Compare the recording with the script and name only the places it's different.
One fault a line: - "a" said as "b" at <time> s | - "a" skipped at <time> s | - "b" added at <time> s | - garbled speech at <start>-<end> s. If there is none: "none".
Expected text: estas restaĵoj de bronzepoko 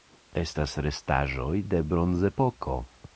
none